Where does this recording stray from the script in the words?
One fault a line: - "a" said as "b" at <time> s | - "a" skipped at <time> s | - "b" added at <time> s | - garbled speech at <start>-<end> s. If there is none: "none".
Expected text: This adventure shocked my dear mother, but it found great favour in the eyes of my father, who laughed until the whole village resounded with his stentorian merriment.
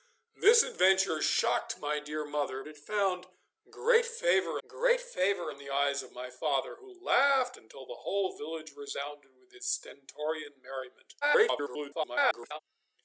- "but" skipped at 2.6 s
- "great favour" added at 4.7 s
- garbled speech at 11.2-12.6 s